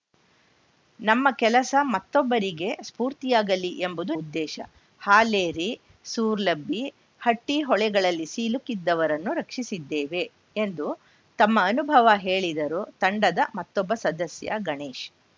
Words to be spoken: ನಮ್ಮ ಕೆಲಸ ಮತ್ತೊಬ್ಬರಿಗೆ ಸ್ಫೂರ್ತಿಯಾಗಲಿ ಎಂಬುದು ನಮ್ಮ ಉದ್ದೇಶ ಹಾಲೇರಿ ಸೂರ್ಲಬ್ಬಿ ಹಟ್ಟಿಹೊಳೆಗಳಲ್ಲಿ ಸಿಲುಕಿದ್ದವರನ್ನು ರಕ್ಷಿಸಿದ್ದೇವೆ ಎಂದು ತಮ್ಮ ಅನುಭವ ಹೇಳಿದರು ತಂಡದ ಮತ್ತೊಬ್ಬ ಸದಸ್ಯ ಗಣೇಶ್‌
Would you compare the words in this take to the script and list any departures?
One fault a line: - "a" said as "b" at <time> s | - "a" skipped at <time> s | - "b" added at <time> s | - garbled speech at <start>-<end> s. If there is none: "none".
- "ನಮ್ಮ" skipped at 4.1 s